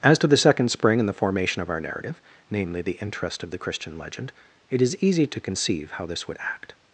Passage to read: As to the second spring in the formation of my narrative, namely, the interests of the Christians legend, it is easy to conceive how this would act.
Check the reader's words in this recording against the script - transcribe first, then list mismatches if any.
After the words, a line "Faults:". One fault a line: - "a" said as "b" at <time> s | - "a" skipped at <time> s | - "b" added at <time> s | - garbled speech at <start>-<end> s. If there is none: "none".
As to the second spring in the formation of our narrative, namely, the interest of the Christian legend, it is easy to conceive how this would act.
Faults:
- "my" said as "our" at 1.7 s
- "interests" said as "interest" at 3.0 s
- "Christians" said as "Christian" at 3.6 s